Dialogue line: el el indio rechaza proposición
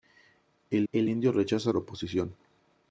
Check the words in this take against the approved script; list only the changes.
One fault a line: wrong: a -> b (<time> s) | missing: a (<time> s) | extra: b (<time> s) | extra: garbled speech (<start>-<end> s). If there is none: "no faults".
no faults